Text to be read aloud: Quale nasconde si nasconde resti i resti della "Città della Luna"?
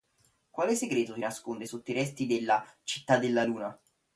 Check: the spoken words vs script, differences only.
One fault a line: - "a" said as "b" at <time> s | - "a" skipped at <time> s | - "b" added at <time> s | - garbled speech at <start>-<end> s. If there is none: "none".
- "nasconde" said as "segreto" at 0.7 s
- "resti" said as "sotto" at 1.6 s